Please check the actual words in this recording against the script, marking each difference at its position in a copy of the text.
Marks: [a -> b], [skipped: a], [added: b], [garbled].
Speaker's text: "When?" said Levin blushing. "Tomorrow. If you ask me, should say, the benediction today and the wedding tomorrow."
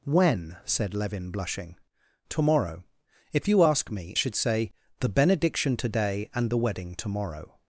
"When?" said Levin blushing. "Tomorrow. If you ask me, should say, the benediction today and the wedding tomorrow."